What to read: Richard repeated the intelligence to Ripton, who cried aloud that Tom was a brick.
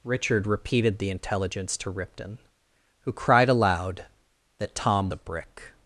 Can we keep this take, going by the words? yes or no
no